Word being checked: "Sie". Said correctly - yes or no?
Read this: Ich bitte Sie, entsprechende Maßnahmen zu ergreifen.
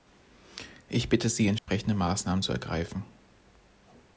yes